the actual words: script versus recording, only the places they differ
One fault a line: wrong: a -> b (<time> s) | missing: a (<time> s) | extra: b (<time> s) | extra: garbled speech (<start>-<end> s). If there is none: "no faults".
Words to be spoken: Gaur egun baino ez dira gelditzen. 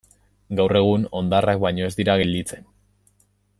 extra: hondarrak (1.2 s)